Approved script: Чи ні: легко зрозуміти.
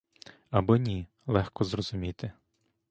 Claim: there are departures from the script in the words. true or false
true